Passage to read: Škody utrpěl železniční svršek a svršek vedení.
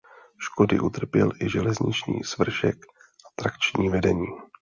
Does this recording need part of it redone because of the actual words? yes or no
yes